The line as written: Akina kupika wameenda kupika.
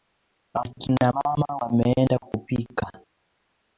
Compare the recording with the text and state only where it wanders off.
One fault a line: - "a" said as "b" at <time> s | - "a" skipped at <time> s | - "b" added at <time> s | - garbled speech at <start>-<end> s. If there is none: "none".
- "kupika" said as "mama" at 1.1 s